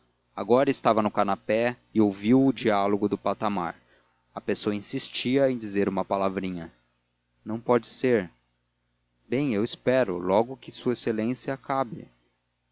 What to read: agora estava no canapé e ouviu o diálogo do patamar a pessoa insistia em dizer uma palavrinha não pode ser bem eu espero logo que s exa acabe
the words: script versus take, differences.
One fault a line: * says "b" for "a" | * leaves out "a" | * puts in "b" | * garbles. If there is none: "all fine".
all fine